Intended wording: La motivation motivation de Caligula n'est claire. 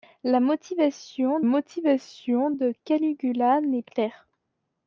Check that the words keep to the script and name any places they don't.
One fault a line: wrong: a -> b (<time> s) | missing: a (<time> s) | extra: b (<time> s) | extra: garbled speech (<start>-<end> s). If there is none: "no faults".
no faults